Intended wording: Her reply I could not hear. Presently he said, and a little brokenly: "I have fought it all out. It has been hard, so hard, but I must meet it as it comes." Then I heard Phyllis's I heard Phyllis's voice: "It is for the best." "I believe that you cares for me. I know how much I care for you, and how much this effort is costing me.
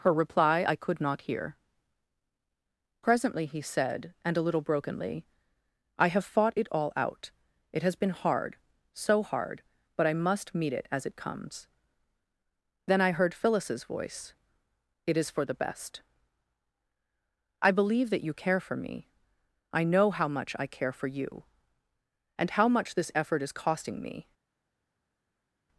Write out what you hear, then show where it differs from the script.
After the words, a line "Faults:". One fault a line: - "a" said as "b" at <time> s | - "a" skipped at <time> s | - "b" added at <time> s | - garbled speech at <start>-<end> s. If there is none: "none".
Her reply I could not hear. Presently he said, and a little brokenly: "I have fought it all out. It has been hard, so hard, but I must meet it as it comes." Then I heard Phyllis's voice: "It is for the best." "I believe that you care for me. I know how much I care for you, and how much this effort is costing me.
Faults:
- "I heard Phyllis's" skipped at 13.9 s
- "cares" said as "care" at 18.3 s